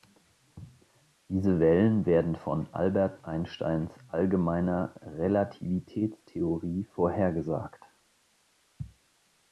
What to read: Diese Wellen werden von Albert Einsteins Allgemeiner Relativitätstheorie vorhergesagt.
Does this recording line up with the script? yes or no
yes